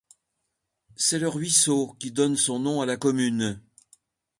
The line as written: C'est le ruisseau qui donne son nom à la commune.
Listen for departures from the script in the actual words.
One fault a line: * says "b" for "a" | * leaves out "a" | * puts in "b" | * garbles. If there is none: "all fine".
all fine